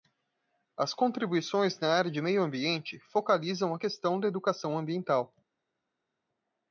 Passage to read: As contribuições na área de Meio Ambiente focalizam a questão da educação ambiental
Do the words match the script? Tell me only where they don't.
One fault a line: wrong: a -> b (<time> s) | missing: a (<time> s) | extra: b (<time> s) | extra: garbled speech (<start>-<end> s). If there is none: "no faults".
no faults